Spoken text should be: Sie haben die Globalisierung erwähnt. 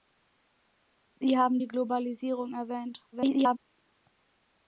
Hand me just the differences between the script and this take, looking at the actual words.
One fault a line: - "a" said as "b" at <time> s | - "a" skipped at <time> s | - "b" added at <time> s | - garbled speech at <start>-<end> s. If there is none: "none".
- garbled speech at 3.1-3.6 s